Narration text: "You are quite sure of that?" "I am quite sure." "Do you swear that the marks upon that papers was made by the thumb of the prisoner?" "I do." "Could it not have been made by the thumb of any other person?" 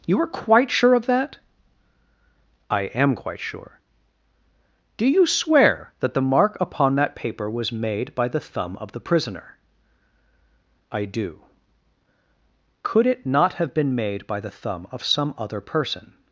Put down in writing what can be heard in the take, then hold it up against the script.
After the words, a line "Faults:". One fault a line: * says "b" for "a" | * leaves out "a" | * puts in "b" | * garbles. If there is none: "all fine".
"You are quite sure of that?" "I am quite sure." "Do you swear that the mark upon that paper was made by the thumb of the prisoner?" "I do." "Could it not have been made by the thumb of some other person?"
Faults:
* says "mark" for "marks"
* says "paper" for "papers"
* says "some" for "any"